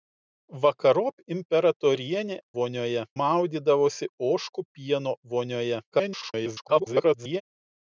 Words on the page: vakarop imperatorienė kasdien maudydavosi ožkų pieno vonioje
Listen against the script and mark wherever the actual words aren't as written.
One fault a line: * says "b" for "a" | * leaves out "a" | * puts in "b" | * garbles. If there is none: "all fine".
* says "vonioje" for "kasdien"
* garbles